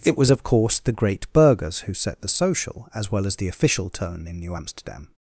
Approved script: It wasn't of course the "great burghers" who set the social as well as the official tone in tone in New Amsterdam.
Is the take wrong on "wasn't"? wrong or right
wrong